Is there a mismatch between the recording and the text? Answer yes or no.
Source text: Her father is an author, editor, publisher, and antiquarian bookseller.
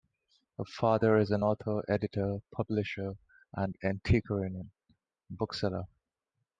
no